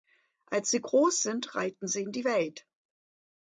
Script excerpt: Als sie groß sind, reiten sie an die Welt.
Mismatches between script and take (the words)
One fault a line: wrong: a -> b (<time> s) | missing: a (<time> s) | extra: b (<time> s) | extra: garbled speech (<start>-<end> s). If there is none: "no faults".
wrong: an -> in (2.0 s)